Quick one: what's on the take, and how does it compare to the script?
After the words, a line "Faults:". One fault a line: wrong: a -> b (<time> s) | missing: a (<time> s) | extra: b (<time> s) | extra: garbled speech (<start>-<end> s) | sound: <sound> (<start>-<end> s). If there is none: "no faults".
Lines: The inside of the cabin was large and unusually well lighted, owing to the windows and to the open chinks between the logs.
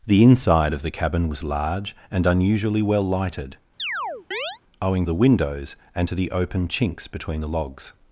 The inside of the cabin was large and unusually well lighted, owing the windows and to the open chinks between the logs.
Faults:
sound: chirp (3.8-4.6 s)
missing: to (5.1 s)